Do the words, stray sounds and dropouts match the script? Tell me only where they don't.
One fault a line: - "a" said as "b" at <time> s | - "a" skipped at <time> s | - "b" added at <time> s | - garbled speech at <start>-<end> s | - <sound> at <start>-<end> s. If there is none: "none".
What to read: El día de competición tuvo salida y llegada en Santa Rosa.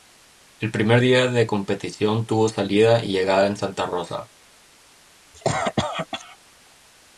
- "primer" added at 0.7 s
- cough at 5.3-6.4 s